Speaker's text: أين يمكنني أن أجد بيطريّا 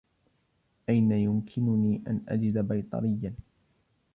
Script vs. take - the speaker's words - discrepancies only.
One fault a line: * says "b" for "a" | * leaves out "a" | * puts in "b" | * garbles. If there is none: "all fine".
all fine